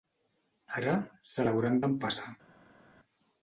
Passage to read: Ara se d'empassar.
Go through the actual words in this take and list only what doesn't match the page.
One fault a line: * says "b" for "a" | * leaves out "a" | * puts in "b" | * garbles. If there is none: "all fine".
* puts in "l'hauran"